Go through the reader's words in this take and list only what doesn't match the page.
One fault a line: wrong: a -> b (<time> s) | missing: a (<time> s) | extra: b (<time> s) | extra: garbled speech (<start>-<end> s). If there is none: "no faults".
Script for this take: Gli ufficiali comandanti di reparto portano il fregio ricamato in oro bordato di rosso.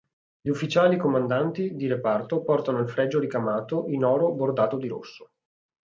no faults